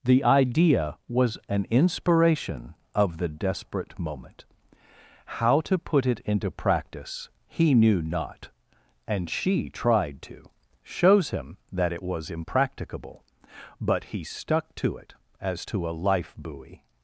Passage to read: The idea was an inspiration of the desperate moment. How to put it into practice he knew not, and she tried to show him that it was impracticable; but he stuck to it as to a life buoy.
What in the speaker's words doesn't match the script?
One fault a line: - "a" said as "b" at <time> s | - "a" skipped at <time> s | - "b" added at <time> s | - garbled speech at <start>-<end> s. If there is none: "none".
- "show" said as "shows" at 10.8 s